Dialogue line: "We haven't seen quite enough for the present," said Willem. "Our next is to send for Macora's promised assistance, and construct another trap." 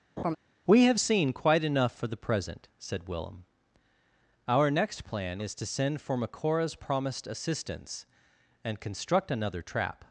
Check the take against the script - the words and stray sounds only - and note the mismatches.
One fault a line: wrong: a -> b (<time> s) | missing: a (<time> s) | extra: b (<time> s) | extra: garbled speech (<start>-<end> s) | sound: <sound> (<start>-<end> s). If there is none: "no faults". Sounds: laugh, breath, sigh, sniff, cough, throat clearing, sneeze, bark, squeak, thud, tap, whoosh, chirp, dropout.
sound: laugh (0.2-0.4 s)
wrong: haven't -> have (0.8 s)
extra: plan (5.0 s)